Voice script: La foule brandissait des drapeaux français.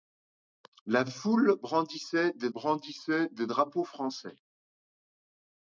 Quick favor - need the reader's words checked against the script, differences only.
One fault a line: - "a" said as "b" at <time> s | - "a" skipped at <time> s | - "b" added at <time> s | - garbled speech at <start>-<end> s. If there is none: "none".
- "brandissait des" added at 2.5 s